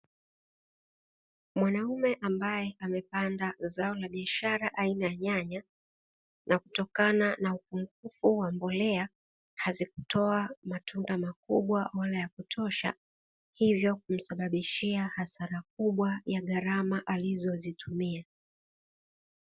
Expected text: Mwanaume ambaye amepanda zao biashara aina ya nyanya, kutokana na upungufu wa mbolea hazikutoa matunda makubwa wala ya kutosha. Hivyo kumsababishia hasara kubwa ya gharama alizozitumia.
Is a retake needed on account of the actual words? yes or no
yes